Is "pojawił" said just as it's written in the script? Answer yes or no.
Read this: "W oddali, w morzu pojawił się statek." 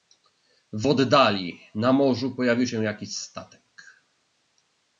yes